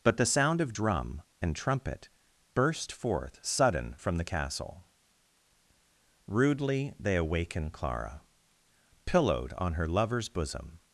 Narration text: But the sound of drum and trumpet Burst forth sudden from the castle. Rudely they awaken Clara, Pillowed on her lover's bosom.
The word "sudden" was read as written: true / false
true